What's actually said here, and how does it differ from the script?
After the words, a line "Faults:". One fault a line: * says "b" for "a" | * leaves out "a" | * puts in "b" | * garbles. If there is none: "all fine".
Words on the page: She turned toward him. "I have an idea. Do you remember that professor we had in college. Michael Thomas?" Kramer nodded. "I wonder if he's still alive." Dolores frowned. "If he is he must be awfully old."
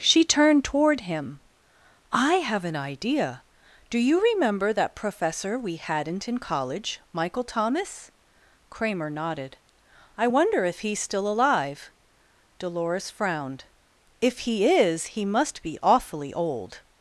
She turned toward him. "I have an idea. Do you remember that professor we hadn't in college. Michael Thomas?" Kramer nodded. "I wonder if he's still alive." Dolores frowned. "If he is he must be awfully old."
Faults:
* says "hadn't" for "had"